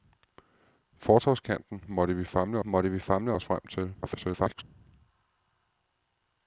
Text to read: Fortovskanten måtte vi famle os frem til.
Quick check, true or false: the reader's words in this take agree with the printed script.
false